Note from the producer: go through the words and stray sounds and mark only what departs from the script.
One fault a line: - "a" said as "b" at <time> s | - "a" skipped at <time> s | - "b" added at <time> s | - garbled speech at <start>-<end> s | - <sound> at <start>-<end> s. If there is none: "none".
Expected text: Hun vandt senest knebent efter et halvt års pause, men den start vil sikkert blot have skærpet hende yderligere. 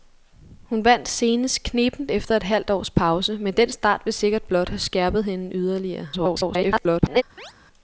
- garbled speech at 6.1-7.2 s
- chirp at 7.4-7.5 s